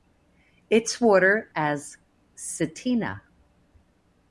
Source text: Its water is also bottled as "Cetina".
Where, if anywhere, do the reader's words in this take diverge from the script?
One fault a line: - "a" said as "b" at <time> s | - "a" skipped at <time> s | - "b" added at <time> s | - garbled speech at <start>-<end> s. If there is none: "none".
- "is also bottled" skipped at 1.5 s